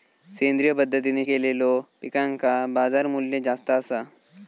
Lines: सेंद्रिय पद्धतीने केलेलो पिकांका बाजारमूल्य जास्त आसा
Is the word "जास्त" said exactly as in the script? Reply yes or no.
yes